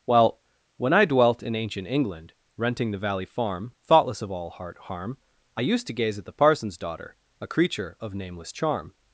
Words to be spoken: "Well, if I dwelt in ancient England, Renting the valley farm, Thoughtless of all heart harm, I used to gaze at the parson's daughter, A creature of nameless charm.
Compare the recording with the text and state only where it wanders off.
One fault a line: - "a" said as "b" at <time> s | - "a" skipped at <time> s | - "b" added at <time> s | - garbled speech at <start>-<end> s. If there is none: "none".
- "if" said as "when" at 0.8 s